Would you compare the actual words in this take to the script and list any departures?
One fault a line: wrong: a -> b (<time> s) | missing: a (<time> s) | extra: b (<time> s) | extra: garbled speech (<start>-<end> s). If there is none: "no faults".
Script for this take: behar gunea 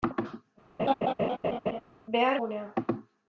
no faults